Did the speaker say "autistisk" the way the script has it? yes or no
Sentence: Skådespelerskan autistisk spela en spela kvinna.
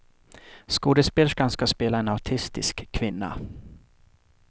no